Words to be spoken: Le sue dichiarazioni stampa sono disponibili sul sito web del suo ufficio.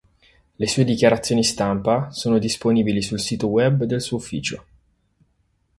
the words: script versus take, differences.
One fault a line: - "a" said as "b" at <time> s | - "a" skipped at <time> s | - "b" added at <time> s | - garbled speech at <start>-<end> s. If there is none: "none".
none